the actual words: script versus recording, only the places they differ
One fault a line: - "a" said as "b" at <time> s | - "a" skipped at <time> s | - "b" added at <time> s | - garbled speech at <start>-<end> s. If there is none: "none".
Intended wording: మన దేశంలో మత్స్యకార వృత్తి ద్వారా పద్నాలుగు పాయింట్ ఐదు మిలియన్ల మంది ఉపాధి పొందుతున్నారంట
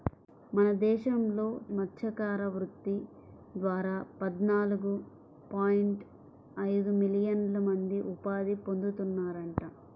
none